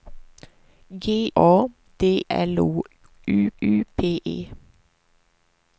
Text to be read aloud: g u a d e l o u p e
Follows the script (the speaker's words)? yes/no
no